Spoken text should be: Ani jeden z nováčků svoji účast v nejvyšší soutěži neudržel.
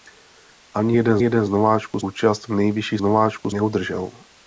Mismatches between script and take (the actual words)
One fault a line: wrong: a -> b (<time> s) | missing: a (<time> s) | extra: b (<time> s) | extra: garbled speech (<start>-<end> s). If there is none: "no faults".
extra: jeden (1.2 s)
missing: svoji (2.0 s)
wrong: soutěži -> nováčků (3.0 s)